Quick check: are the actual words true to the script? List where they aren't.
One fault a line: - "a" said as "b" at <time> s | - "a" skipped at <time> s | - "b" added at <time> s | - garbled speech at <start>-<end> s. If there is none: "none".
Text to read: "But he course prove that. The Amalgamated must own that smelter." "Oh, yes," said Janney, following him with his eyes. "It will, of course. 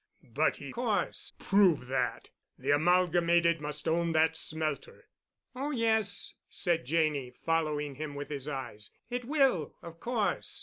none